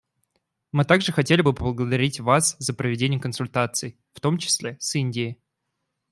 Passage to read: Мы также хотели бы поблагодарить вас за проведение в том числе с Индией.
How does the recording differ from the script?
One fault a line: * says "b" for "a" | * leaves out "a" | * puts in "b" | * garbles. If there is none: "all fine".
* puts in "консультаций"